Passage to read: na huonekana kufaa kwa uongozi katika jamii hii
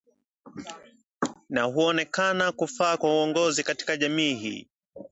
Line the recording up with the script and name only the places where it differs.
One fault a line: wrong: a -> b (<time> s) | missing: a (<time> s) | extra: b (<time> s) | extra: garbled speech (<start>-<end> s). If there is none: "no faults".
no faults